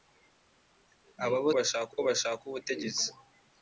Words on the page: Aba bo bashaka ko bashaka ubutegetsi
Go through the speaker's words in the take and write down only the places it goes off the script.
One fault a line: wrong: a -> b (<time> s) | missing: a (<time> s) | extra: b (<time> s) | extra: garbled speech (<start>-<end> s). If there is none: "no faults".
no faults